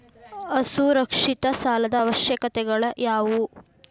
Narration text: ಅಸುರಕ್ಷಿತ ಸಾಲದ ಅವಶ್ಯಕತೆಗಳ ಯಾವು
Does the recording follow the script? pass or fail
pass